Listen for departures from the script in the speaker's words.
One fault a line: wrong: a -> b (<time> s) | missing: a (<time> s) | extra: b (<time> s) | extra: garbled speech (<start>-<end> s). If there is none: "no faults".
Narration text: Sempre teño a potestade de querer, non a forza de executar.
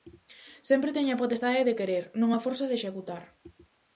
no faults